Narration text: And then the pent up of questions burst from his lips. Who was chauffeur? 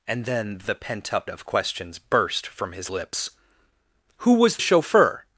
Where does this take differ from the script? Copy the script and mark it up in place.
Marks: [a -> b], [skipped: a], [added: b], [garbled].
And then the pent up of questions burst from his lips. Who was chauffeur?